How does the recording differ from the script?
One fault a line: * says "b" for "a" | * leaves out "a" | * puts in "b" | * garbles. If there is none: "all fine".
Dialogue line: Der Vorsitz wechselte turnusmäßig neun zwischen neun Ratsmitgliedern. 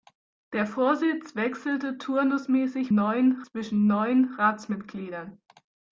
all fine